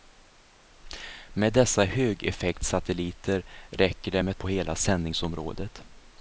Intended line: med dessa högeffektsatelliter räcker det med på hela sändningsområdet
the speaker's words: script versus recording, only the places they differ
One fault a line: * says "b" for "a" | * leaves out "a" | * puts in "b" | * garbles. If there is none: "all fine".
all fine